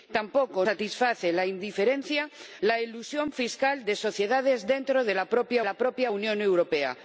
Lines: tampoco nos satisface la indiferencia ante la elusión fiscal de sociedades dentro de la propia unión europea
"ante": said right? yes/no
no